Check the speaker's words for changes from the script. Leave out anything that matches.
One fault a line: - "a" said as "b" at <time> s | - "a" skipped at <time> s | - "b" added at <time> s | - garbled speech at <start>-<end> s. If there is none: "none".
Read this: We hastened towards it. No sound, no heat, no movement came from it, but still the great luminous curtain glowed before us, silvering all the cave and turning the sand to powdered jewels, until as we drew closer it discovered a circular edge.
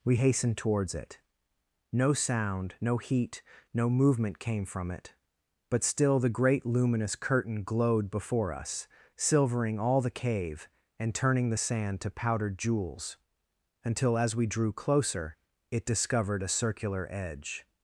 none